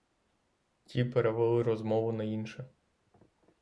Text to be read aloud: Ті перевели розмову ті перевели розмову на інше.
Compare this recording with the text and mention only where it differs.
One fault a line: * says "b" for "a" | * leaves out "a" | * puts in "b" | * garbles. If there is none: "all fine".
* leaves out "ті перевели розмову"